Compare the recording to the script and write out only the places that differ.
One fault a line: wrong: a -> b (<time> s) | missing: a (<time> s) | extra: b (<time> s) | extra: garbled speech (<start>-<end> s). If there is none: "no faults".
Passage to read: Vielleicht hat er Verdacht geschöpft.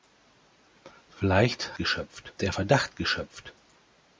wrong: hat -> geschöpft (1.7 s)